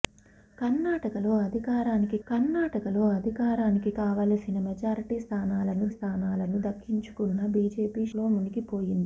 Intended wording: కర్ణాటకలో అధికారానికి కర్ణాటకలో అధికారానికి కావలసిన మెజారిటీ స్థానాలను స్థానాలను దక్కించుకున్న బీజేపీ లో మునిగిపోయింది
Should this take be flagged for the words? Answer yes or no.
no